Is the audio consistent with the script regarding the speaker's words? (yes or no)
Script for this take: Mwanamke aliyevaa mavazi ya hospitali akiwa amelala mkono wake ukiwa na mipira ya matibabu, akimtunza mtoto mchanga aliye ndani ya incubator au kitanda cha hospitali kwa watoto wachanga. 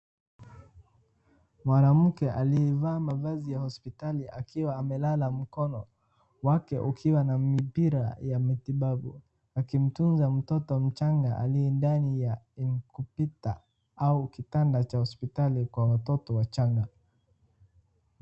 yes